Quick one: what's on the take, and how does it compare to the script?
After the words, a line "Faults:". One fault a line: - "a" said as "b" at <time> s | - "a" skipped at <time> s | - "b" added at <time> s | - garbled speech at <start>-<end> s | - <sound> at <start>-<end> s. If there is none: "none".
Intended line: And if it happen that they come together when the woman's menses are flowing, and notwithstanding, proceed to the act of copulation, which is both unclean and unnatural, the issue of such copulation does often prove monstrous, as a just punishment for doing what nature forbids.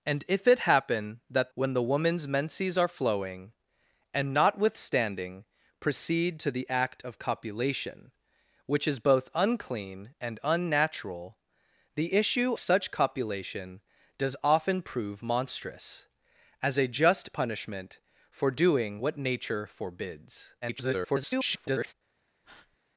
And if it happen that when the woman's menses are flowing, and notwithstanding, proceed to the act of copulation, which is both unclean and unnatural, the issue such copulation does often prove monstrous, as a just punishment for doing what nature forbids. [garbled]
Faults:
- "they come together" skipped at 1.5 s
- "of" skipped at 12.5 s
- garbled speech at 20.6-21.9 s
- breath at 22.4-22.8 s